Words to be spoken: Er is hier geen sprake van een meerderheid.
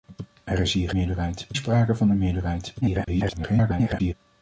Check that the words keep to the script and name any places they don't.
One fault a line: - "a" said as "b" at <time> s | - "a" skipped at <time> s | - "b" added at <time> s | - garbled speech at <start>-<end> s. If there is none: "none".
- "geen" said as "meerderheid" at 0.9 s
- garbled speech at 2.8-4.1 s